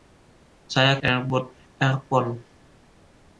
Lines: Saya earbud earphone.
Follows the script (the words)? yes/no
yes